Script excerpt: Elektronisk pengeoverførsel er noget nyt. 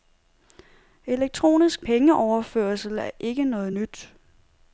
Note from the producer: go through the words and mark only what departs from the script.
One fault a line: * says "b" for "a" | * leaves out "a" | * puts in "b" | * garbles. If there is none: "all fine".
* puts in "ikke"